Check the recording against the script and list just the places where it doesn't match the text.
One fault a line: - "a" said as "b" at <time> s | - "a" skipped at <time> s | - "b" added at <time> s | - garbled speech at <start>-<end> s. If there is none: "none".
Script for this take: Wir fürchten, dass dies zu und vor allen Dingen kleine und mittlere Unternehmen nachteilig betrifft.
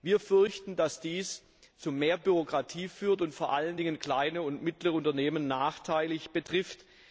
- "mehr Bürokratie führt" added at 1.9 s